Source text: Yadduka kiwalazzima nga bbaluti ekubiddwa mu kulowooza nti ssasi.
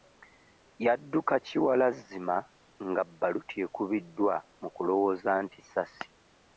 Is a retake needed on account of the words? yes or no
no